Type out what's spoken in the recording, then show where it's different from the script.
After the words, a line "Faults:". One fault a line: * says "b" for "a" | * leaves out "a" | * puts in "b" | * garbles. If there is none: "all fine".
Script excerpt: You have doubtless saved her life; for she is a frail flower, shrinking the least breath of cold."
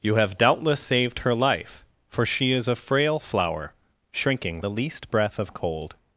You have doubtless saved her life; for she is a frail flower, shrinking the least breath of cold."
Faults:
all fine